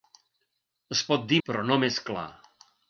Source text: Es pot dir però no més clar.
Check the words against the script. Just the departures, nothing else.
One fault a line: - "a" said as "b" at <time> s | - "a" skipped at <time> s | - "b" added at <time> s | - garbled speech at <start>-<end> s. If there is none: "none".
none